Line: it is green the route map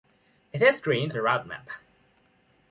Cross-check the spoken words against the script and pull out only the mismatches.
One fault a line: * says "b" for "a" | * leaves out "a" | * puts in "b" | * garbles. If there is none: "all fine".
all fine